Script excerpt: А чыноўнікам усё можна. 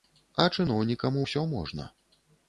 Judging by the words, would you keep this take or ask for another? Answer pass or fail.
pass